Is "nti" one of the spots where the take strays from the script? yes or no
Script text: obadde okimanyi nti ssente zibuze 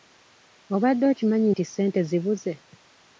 no